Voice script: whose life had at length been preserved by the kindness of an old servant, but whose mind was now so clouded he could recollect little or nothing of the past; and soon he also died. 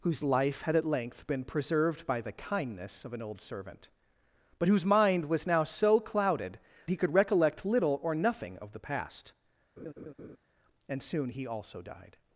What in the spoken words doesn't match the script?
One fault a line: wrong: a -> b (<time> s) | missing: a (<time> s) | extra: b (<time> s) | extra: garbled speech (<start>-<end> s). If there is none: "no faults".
no faults